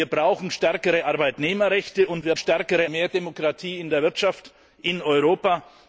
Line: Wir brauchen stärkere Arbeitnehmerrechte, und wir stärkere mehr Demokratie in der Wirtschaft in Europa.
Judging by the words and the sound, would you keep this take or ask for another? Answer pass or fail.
pass